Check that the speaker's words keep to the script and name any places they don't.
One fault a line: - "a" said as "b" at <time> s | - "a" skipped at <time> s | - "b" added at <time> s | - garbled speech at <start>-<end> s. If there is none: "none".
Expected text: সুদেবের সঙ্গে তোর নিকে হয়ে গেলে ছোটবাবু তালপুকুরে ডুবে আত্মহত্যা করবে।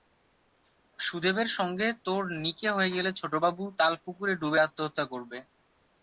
none